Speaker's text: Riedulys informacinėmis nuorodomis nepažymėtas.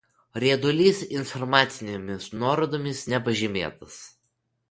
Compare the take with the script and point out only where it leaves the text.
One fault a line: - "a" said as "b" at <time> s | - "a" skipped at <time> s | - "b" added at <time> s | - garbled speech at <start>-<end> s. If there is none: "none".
none